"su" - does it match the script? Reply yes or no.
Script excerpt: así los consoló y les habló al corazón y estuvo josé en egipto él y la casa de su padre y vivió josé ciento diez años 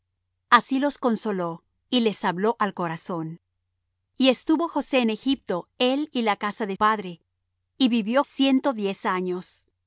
no